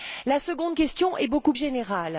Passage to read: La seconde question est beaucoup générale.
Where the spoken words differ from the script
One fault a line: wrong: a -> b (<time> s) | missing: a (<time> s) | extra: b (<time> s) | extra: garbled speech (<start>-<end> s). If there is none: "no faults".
no faults